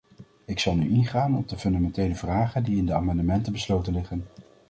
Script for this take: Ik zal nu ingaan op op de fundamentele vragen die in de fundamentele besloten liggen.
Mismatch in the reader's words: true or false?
true